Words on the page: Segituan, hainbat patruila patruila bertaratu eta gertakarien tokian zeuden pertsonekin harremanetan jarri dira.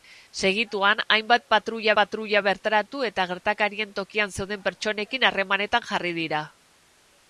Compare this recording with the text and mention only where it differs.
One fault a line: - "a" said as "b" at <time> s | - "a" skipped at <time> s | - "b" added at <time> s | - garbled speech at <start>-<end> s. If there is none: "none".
none